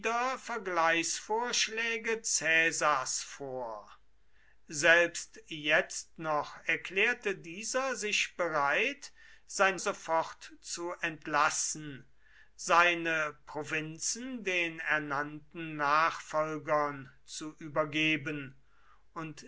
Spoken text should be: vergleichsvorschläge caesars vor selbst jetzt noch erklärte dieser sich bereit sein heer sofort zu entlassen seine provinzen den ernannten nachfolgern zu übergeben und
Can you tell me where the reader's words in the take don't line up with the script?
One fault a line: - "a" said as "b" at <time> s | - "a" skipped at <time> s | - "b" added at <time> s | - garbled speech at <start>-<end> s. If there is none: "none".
- "heer" skipped at 9.8 s